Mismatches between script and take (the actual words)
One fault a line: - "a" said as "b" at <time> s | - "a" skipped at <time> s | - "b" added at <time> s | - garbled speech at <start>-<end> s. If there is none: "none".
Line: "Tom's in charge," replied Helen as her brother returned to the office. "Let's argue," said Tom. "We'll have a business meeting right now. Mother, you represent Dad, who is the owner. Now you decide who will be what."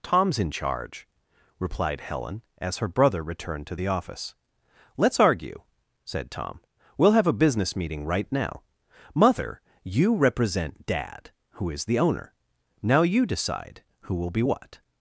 none